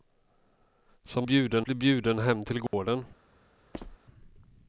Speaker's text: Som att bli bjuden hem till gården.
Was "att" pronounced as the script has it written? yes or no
no